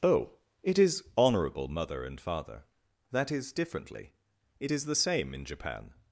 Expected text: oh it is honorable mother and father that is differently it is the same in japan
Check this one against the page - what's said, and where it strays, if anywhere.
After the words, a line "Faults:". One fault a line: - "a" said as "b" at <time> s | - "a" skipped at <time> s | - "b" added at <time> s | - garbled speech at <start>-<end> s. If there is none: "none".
oh it is honorable mother and father that is differently it is the same in japan
Faults:
none